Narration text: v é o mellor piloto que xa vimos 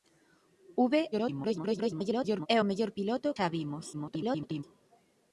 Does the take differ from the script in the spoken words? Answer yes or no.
yes